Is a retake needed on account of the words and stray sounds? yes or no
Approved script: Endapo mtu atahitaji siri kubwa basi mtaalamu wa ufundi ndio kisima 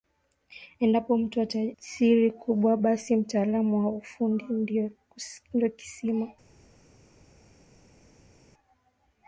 yes